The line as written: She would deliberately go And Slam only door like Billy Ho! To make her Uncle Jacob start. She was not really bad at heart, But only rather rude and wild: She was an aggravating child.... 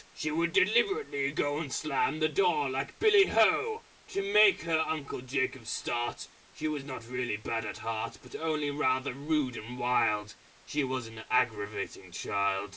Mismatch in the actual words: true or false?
true